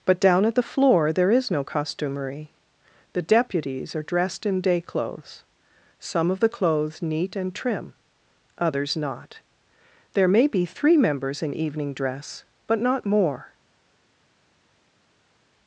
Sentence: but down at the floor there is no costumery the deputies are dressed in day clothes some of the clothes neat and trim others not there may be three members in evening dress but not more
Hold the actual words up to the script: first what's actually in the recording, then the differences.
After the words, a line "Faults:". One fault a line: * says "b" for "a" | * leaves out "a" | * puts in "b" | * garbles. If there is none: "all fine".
but down at the floor there is no costumery the deputies are dressed in day clothes some of the clothes neat and trim others not there may be three members in evening dress but not more
Faults:
all fine